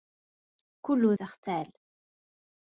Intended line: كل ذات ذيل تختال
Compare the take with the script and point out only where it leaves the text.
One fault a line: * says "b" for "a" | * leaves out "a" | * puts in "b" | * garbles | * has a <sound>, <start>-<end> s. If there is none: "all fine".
* leaves out "ذات ذيل"